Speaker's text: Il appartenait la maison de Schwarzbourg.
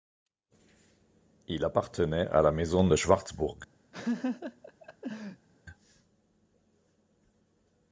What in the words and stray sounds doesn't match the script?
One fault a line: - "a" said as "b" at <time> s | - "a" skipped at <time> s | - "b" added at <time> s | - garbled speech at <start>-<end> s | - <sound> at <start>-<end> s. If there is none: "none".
- "à" added at 2.3 s
- laugh at 3.9-5.5 s